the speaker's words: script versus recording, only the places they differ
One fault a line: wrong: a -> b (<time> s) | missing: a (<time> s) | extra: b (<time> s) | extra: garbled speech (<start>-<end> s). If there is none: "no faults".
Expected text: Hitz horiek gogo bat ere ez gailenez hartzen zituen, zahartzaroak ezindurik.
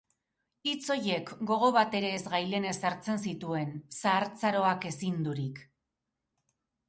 no faults